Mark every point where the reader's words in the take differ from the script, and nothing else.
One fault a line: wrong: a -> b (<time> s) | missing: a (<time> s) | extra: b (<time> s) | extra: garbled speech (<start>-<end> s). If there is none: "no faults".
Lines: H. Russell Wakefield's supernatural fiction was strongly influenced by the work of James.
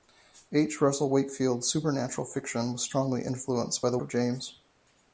missing: work (4.0 s)